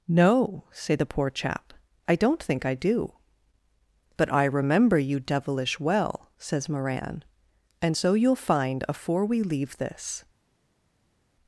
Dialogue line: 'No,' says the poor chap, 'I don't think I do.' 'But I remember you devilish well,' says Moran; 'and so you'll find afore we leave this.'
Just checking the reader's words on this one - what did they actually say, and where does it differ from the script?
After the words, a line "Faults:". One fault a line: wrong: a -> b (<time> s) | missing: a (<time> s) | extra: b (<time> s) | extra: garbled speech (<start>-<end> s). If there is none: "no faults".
'No,' say the poor chap, 'I don't think I do.' 'But I remember you devilish well,' says Moran; 'and so you'll find afore we leave this.'
Faults:
wrong: says -> say (0.7 s)